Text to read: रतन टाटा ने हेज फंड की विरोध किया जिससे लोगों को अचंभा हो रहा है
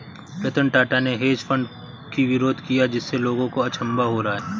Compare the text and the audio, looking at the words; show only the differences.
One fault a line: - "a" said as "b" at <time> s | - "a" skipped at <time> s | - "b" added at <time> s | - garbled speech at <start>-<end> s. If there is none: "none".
none